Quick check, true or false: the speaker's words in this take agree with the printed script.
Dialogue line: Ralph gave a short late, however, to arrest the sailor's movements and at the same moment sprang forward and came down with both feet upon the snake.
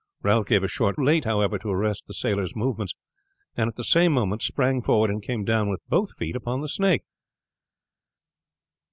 true